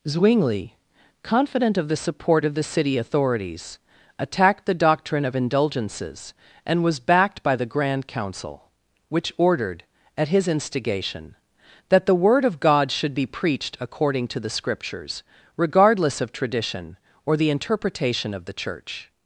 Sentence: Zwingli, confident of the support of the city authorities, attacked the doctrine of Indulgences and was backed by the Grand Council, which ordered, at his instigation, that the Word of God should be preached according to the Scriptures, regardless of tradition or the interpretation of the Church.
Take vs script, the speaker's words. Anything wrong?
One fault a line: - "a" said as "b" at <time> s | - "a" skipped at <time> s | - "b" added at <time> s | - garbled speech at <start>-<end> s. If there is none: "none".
none